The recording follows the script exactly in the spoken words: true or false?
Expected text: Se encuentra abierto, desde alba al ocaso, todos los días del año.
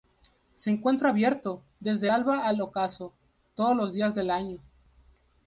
true